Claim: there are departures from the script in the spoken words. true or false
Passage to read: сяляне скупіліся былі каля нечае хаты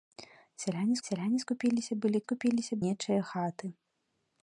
true